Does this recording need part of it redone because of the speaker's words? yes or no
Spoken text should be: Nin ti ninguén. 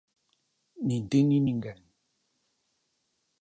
yes